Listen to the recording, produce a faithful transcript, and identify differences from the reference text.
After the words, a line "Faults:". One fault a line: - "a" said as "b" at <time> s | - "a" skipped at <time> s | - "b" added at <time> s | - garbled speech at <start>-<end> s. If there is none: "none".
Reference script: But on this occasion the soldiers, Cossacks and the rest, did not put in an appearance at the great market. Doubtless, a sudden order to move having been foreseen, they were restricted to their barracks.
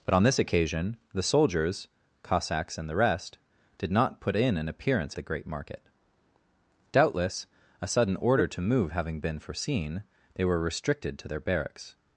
But on this occasion the soldiers, Cossacks and the rest, did not put in an appearance the great market. Doubtless, a sudden order to move having been foreseen, they were restricted to their barracks.
Faults:
- "at" skipped at 5.2 s